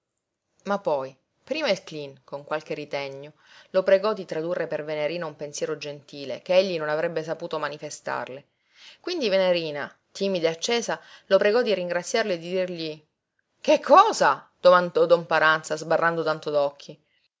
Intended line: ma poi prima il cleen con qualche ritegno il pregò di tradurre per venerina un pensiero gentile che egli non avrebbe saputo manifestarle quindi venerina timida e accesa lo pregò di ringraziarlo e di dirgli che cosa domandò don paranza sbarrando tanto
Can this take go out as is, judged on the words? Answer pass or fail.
fail